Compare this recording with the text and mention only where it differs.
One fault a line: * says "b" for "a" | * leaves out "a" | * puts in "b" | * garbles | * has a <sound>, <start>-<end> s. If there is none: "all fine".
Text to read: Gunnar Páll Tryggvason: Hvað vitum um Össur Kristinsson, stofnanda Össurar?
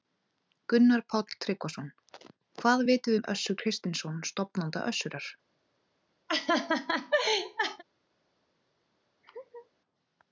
* has a laugh, 6.3-7.8 s
* has a laugh, 9.2-9.7 s